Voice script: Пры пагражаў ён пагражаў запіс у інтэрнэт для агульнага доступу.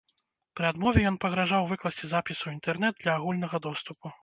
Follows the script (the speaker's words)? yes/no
no